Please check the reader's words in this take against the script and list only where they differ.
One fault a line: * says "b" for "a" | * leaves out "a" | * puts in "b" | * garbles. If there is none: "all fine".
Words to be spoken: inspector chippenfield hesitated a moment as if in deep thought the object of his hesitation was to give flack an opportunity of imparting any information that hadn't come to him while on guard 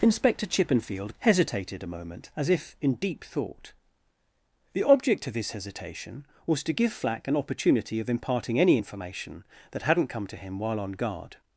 all fine